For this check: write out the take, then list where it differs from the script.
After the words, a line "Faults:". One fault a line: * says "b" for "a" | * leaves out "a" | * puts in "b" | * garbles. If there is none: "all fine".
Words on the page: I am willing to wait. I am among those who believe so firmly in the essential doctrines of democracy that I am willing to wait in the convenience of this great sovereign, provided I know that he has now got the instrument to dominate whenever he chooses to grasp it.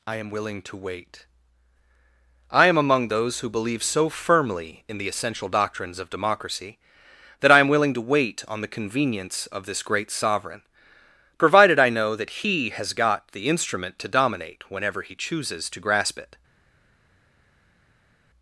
I am willing to wait. I am among those who believe so firmly in the essential doctrines of democracy that I am willing to wait on the convenience of this great sovereign, provided I know that he has got the instrument to dominate whenever he chooses to grasp it.
Faults:
* says "on" for "in"
* leaves out "now"